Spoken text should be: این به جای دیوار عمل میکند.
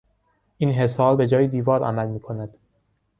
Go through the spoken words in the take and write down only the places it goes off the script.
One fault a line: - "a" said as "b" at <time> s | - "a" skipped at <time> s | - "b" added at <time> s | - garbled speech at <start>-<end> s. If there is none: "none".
- "حصار" added at 0.7 s